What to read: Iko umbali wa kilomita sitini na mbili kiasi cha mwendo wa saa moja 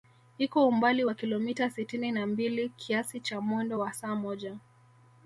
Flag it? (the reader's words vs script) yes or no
no